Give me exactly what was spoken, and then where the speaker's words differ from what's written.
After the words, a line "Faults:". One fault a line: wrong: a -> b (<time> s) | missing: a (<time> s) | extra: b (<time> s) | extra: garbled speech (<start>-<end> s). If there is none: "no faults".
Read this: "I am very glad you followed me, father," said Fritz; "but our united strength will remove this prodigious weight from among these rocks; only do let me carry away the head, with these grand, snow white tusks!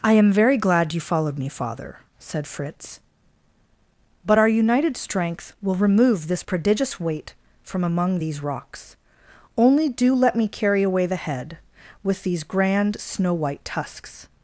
"I am very glad you followed me, father," said Fritz; "but our united strength will remove this prodigious weight from among these rocks; only do let me carry away the head, with these grand, snow white tusks!
Faults:
no faults